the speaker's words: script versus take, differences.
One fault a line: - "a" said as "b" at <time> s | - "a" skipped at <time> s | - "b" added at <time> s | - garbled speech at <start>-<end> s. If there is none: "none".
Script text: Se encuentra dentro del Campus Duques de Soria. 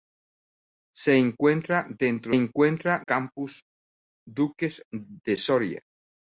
- "del" said as "encuentra" at 2.3 s